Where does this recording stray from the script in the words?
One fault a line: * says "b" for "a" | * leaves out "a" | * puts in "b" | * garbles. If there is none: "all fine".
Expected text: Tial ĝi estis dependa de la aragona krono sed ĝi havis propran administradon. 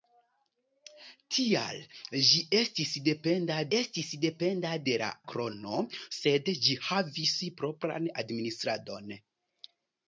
* puts in "estis dependa"
* leaves out "aragona"